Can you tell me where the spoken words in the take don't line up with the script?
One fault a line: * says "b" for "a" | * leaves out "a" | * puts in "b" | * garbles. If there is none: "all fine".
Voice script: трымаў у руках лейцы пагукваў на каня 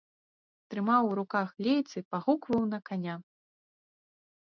all fine